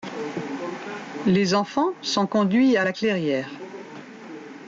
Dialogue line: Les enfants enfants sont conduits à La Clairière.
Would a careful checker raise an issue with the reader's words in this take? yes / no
yes